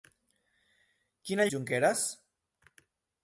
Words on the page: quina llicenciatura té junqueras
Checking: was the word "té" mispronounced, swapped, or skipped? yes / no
yes